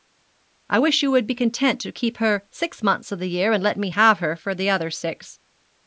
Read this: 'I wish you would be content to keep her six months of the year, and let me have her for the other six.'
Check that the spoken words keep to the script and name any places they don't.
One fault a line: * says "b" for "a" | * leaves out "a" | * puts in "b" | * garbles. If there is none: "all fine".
all fine